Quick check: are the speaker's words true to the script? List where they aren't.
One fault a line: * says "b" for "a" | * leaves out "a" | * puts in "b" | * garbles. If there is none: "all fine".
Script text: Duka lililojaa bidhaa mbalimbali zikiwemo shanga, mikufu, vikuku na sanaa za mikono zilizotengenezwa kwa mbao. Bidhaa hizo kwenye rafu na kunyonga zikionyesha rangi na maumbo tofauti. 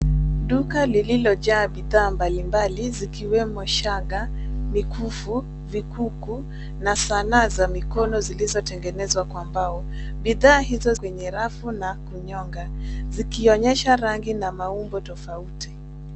all fine